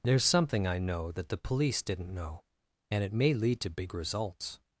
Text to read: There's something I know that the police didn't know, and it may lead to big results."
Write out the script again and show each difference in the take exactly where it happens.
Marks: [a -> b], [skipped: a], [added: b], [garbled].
There's something I know that the police didn't know, and it may lead to big results."